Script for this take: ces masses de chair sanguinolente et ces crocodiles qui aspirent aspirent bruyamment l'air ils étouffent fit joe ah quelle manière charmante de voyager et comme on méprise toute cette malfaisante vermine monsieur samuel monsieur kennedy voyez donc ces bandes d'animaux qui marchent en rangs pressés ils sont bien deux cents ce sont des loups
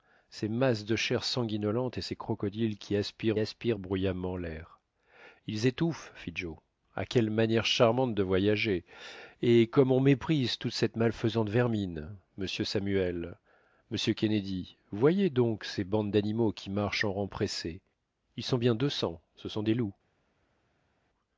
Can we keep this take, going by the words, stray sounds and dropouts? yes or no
yes